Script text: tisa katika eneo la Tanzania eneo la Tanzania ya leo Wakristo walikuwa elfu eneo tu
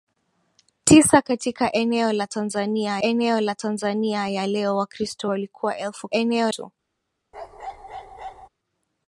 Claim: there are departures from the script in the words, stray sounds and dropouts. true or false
true